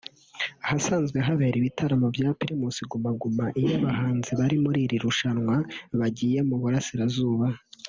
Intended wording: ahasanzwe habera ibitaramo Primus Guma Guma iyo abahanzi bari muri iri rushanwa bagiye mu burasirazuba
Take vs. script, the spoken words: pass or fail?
fail